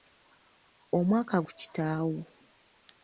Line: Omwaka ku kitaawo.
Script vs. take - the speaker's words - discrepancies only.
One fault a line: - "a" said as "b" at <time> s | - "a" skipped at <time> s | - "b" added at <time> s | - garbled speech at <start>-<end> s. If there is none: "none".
none